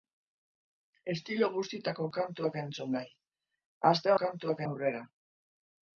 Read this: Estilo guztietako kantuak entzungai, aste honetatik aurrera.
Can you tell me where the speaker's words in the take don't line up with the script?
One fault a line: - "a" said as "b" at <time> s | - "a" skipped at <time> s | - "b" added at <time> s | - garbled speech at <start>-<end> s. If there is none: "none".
- "honetatik" said as "kantuak" at 4.2 s